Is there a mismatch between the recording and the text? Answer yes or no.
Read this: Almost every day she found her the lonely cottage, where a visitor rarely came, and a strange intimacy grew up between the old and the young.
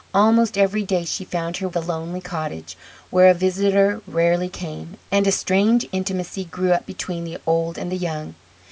no